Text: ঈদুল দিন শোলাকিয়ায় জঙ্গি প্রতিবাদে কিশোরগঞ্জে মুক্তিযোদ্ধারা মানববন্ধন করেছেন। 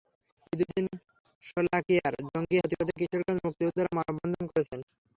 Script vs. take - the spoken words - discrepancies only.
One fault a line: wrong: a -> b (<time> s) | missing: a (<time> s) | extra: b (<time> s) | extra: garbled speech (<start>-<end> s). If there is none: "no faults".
no faults